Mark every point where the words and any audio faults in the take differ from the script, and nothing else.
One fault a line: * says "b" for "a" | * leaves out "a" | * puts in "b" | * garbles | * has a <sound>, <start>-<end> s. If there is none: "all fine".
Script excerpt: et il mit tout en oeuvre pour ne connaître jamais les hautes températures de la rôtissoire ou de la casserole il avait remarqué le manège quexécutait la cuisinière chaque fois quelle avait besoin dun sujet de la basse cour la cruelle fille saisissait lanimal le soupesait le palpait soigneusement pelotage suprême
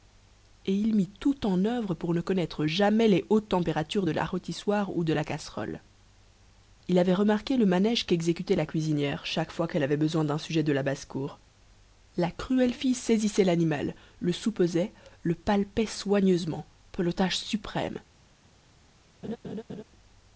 * has a laugh, 19.2-19.8 s